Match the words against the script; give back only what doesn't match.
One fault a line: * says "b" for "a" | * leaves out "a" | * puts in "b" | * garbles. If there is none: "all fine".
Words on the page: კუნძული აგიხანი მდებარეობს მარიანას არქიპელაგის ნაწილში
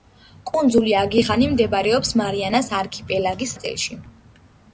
all fine